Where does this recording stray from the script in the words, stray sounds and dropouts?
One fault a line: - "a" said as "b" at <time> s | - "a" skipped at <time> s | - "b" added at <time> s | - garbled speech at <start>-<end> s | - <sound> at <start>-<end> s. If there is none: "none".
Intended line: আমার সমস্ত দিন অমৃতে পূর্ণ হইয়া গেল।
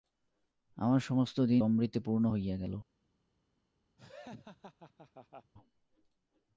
- laugh at 4.0-5.5 s